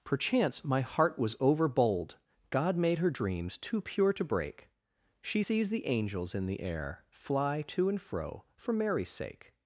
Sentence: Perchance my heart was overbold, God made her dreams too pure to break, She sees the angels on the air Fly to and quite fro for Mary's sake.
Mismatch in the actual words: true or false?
true